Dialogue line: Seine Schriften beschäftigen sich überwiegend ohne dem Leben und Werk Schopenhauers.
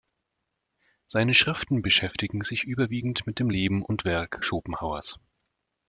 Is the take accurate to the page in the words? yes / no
no